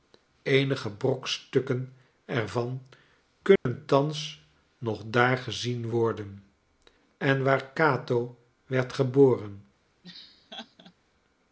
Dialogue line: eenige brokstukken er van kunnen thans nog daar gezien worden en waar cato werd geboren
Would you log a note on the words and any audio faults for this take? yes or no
yes